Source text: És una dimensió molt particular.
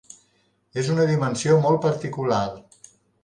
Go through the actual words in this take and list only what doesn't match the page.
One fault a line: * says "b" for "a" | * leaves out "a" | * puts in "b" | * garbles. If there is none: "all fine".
all fine